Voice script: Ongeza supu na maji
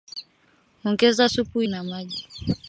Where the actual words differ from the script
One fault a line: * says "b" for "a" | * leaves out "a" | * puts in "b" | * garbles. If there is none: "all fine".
all fine